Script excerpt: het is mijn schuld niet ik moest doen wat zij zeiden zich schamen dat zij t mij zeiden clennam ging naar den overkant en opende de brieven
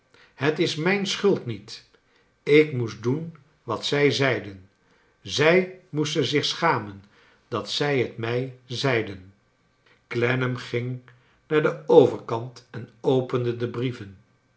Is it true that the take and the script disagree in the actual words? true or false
true